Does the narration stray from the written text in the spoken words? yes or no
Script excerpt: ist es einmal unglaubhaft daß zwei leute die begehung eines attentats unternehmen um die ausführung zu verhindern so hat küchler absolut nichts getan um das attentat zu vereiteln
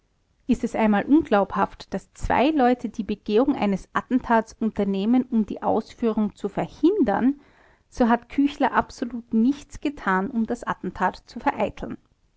no